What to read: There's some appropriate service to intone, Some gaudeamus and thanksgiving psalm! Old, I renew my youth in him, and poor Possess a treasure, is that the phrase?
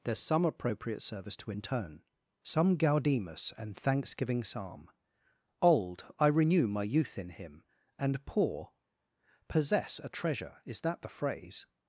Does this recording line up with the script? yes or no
yes